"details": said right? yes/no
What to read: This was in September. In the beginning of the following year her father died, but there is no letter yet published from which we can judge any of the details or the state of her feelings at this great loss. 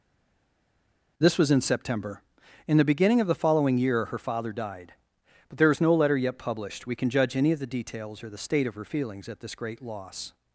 yes